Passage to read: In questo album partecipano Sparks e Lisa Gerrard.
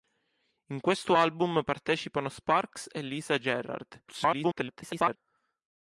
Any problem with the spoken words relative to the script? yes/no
yes